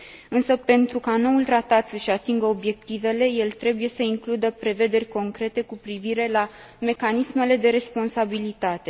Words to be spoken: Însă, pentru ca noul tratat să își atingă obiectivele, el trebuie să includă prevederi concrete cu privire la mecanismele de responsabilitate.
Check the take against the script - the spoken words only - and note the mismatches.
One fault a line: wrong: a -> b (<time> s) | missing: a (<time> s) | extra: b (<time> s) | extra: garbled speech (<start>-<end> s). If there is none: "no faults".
no faults